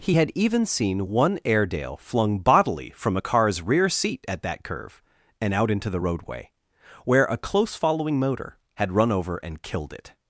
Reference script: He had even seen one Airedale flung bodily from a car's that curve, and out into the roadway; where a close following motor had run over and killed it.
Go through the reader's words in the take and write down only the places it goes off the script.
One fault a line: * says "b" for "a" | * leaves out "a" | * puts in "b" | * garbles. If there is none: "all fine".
* puts in "rear seat at"